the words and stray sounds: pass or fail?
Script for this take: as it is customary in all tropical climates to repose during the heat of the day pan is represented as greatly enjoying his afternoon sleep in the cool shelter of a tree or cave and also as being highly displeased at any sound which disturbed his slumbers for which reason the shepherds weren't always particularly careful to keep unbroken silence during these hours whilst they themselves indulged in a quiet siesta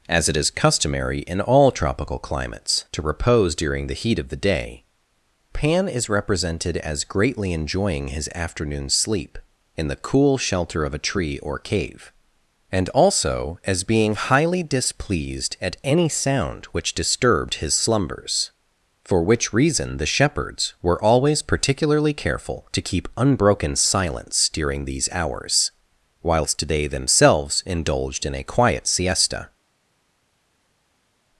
fail